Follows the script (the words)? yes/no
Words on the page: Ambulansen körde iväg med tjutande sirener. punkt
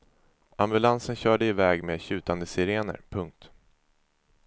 yes